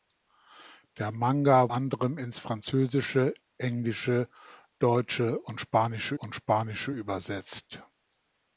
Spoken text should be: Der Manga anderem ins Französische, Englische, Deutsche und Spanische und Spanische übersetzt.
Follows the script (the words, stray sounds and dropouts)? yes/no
yes